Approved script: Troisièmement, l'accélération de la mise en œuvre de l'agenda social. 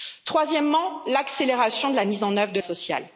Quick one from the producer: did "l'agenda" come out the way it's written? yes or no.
no